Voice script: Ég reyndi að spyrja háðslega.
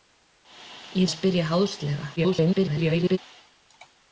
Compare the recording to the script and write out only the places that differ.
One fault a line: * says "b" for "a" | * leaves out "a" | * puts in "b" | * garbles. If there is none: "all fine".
* leaves out "reyndi"
* garbles